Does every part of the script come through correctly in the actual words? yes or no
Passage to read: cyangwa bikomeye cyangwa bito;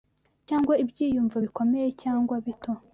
no